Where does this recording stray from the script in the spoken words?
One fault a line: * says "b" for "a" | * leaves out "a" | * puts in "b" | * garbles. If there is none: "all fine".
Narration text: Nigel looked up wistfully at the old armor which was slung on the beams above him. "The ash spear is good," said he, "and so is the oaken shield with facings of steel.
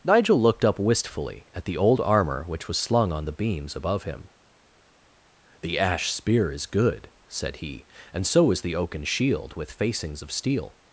all fine